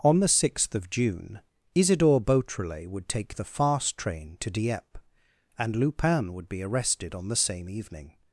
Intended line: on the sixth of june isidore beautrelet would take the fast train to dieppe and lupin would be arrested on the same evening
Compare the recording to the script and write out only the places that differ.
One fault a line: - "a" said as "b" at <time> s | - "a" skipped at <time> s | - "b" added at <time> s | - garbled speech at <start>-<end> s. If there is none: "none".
none